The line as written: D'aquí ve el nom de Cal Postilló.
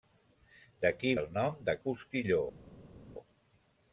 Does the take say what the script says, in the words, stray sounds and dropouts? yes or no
no